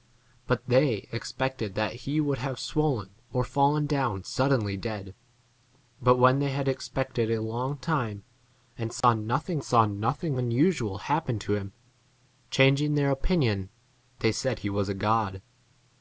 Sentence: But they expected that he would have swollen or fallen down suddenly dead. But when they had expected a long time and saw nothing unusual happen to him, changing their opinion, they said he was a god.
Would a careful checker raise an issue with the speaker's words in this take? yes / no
yes